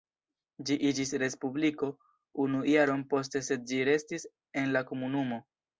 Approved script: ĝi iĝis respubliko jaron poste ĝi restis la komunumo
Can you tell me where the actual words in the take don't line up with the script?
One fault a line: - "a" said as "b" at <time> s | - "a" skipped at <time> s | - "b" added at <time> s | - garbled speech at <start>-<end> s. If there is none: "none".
- "unu" added at 2.5 s
- "sed" added at 3.5 s
- "en" added at 4.7 s